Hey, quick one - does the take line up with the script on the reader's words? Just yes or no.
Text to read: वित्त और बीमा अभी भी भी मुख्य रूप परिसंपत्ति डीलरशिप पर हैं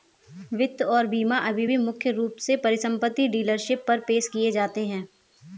no